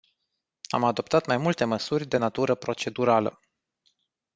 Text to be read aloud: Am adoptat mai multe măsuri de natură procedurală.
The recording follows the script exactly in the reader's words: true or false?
true